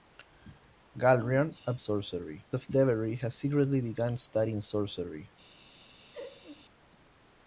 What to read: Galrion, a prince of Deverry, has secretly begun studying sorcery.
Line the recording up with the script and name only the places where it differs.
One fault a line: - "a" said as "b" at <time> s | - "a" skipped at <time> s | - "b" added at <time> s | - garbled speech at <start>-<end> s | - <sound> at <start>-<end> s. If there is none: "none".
- "prince" said as "sorcery" at 1.8 s
- laugh at 6.1-6.7 s